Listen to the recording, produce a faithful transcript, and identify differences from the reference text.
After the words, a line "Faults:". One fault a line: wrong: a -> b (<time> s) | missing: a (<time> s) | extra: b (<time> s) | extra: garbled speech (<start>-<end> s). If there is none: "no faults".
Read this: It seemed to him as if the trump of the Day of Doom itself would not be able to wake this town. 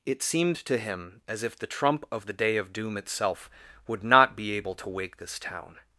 It seemed to him as if the trump of the Day of Doom itself would not be able to wake this town.
Faults:
no faults